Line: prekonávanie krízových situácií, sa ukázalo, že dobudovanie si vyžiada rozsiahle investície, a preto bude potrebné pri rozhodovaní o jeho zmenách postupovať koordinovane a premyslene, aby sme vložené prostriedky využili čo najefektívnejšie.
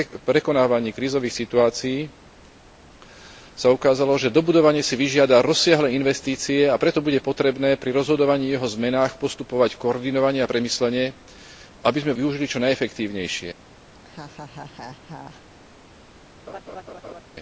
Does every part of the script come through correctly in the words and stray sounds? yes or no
no